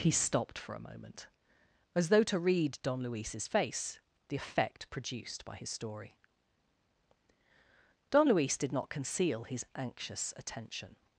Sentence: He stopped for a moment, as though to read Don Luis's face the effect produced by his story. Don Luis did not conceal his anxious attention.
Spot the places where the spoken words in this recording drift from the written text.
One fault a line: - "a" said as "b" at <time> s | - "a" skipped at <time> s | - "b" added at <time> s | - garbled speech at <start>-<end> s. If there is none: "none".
none